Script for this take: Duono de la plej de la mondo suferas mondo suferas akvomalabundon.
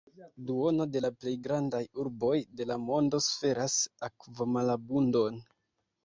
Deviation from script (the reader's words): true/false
true